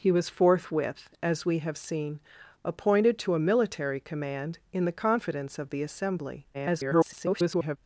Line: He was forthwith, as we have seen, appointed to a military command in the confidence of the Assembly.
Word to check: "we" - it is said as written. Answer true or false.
true